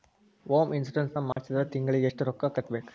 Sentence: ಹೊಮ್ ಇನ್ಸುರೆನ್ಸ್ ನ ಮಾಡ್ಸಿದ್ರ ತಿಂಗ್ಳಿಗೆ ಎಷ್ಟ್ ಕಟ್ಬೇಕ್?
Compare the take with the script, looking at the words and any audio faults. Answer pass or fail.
fail